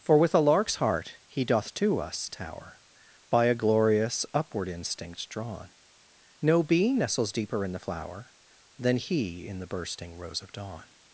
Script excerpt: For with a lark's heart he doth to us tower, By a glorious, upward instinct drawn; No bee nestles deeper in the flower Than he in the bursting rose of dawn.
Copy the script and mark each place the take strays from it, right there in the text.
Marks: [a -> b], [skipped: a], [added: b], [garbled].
For with a lark's heart he doth to us tower, By a glorious, upward instinct drawn; No bee nestles deeper in the flower Than he in the bursting rose of dawn.